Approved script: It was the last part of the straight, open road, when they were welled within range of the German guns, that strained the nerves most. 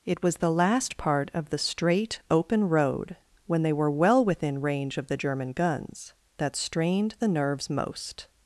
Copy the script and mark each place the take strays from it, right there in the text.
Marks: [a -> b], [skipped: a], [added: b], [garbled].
It was the last part of the straight, open road, when they were [welled -> well] within range of the German guns, that strained the nerves most.